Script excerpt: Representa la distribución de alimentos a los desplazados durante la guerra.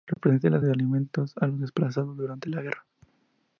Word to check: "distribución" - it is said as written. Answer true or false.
false